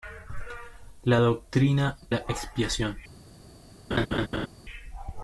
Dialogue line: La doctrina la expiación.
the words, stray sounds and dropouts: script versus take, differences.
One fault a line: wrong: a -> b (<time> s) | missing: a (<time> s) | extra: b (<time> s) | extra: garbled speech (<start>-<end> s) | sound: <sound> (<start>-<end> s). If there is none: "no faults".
sound: laugh (3.9-4.5 s)